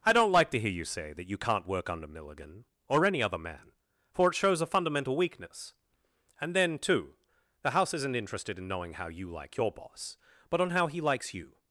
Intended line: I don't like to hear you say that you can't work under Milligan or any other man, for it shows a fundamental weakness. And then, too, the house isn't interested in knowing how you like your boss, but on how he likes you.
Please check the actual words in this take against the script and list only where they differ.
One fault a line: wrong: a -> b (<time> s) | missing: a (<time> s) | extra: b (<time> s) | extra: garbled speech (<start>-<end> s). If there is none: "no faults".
no faults